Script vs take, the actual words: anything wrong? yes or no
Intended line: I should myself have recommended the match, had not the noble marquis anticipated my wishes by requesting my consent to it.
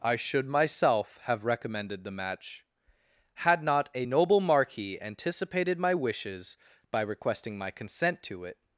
yes